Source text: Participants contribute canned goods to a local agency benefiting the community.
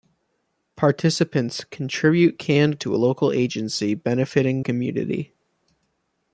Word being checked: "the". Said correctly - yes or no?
no